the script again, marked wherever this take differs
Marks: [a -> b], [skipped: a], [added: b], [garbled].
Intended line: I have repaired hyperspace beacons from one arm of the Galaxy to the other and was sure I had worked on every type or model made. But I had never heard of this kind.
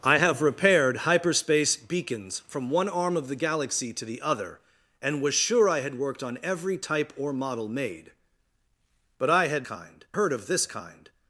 I have repaired hyperspace beacons from one arm of the Galaxy to the other and was sure I had worked on every type or model made. But I had [never -> kind] heard of this kind.